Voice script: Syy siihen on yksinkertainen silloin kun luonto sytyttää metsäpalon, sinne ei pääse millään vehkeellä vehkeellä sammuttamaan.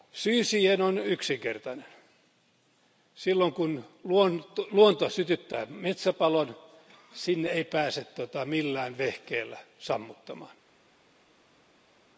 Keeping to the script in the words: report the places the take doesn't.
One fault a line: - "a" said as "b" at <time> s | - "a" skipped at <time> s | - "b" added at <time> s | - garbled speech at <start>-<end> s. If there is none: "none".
- "vehkeellä" skipped at 9.6 s